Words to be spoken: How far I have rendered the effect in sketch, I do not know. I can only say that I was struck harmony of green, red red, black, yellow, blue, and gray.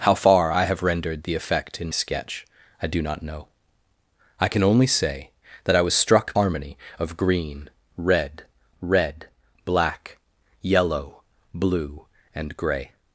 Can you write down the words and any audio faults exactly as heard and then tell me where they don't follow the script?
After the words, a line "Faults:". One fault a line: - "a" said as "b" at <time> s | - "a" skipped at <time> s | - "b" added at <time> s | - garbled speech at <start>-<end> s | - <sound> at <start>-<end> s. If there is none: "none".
How far I have rendered the effect in sketch, I do not know. I can only say that I was struck harmony of green, red red, black, yellow, blue, and gray.
Faults:
none